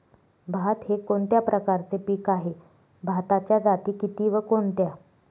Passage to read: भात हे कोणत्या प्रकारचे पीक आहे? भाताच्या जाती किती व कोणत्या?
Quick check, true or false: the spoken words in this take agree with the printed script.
true